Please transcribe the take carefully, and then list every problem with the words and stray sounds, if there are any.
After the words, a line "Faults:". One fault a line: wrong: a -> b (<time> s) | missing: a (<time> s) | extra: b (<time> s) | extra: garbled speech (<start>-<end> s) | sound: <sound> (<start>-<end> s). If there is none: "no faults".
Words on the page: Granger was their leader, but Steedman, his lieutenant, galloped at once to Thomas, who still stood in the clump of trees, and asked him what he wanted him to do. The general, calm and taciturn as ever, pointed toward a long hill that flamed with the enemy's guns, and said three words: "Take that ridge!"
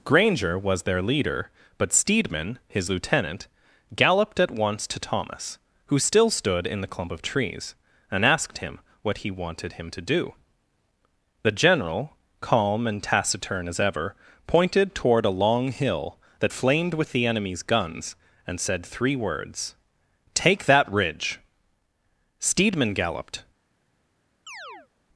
Granger was their leader, but Steedman, his lieutenant, galloped at once to Thomas, who still stood in the clump of trees, and asked him what he wanted him to do. The general, calm and taciturn as ever, pointed toward a long hill that flamed with the enemy's guns, and said three words: "Take that ridge!" Steedman galloped
Faults:
extra: Steedman galloped (22.4 s)
sound: chirp (24.5-24.9 s)